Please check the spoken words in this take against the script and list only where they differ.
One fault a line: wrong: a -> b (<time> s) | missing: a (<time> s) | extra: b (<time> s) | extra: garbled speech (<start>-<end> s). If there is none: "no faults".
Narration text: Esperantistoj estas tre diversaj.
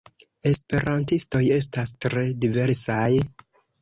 no faults